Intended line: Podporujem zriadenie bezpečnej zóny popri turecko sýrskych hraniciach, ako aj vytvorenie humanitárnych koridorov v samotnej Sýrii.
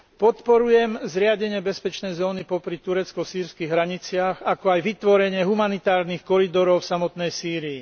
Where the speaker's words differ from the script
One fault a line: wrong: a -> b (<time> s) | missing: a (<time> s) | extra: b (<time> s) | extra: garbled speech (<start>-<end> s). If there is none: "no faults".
no faults